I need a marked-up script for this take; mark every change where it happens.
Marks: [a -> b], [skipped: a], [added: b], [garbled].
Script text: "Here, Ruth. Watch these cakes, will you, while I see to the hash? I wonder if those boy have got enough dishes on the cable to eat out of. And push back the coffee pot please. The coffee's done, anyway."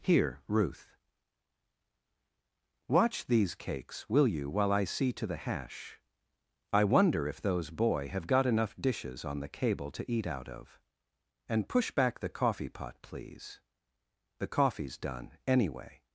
"Here, Ruth. Watch these cakes, will you, while I see to the hash? I wonder if those boy have got enough dishes on the cable to eat out of. And push back the coffee pot please. The coffee's done, anyway."